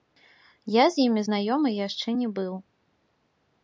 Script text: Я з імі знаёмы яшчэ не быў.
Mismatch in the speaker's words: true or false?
false